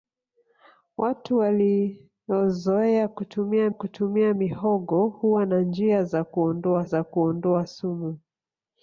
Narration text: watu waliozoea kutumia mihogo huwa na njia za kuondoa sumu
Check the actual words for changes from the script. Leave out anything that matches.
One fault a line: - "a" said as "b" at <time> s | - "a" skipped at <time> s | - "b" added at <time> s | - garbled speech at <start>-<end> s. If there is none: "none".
- "kutumia" added at 3.7 s
- "za kuondoa" added at 6.8 s